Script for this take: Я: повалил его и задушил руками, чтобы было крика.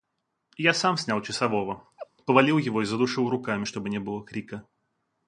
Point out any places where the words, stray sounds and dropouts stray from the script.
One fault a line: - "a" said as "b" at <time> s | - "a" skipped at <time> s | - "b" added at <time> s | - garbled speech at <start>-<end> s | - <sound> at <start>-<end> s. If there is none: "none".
- "сам снял часового" added at 0.7 s
- laugh at 2.0-2.1 s
- "не" added at 3.9 s